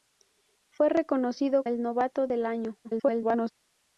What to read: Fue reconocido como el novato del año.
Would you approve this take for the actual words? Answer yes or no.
no